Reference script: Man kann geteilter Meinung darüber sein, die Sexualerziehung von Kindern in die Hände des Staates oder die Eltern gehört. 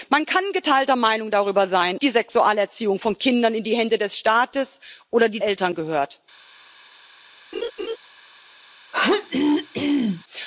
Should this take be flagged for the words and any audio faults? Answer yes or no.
yes